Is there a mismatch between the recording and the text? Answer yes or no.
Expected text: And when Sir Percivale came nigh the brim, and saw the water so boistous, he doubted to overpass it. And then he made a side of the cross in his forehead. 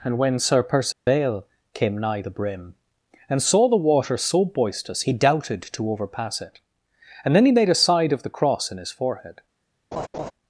no